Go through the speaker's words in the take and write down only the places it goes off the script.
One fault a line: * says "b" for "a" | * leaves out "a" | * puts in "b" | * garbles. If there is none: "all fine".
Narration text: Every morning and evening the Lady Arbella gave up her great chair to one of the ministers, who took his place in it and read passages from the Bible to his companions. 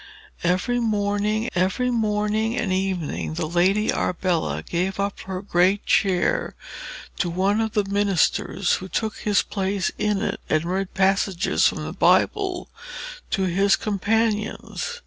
* puts in "every morning"